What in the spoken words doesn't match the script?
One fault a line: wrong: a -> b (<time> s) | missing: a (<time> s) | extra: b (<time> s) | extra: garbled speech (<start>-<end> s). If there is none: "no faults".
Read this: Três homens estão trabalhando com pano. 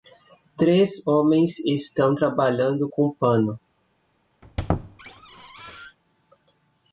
no faults